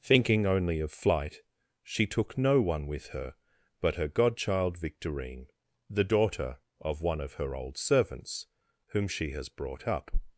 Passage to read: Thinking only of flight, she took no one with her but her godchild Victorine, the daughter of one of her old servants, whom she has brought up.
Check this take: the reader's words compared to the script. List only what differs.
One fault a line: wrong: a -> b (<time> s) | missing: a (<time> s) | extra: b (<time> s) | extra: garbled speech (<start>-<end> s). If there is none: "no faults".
no faults